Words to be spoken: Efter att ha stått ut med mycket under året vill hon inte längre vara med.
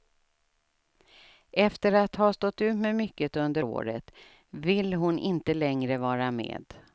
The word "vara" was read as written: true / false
true